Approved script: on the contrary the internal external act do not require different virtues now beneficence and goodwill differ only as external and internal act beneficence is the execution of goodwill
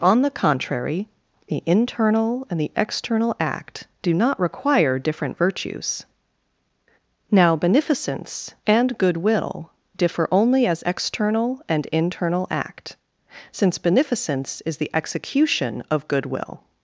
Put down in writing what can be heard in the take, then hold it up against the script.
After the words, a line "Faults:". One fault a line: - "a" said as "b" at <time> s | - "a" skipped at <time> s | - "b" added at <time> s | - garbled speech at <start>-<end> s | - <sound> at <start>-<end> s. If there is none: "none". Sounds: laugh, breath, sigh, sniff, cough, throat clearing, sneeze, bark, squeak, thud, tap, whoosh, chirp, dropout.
on the contrary the internal and the external act do not require different virtues now beneficence and goodwill differ only as external and internal act since beneficence is the execution of goodwill
Faults:
- "and the" added at 2.5 s
- "since" added at 13.5 s